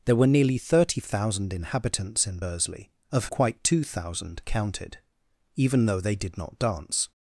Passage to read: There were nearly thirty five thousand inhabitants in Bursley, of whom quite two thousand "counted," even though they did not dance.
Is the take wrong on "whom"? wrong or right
wrong